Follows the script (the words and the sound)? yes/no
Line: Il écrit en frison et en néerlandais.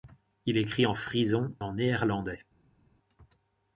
no